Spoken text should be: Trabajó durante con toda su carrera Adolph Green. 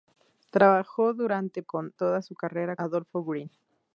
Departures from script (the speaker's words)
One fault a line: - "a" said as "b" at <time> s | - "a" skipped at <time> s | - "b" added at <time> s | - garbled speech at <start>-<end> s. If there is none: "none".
none